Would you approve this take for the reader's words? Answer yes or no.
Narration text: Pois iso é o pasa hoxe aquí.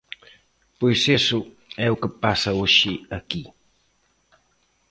no